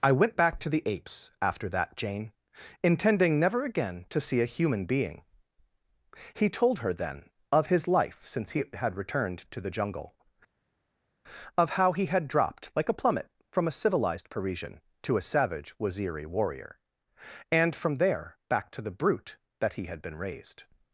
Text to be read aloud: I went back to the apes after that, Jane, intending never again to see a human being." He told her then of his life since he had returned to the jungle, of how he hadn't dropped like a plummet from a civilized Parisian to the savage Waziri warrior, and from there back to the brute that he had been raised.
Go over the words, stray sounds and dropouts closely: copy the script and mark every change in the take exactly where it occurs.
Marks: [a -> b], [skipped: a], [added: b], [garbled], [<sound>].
I went back to the apes after that, Jane, intending never again to see a human being." He told her then of his life since he had returned to the jungle, of how he [hadn't -> had] dropped like a plummet from a civilized Parisian to [the -> a] savage Waziri warrior, and from there back to the brute that he had been raised.